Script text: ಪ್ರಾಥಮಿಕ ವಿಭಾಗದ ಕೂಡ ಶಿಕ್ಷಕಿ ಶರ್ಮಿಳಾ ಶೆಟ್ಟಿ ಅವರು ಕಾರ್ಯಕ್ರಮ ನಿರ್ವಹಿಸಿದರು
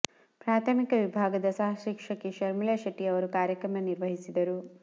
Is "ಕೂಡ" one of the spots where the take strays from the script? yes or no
yes